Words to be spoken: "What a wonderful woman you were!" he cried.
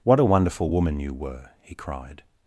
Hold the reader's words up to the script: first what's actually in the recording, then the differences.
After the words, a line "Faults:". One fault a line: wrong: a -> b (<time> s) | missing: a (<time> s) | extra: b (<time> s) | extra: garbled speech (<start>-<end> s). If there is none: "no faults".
"What a wonderful woman you were!" he cried.
Faults:
no faults